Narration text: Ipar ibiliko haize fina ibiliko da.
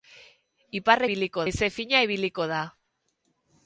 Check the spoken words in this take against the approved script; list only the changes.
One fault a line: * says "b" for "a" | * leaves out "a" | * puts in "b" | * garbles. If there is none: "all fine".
all fine